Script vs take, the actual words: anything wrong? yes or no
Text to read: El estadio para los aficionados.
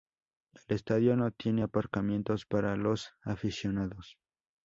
yes